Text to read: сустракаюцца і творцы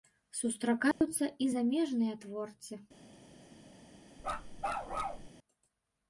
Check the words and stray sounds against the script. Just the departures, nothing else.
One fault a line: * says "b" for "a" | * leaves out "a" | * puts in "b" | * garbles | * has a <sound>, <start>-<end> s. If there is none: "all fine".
* has a dropout, 0.9-1.0 s
* puts in "замежныя"
* has a bark, 4.2-5.3 s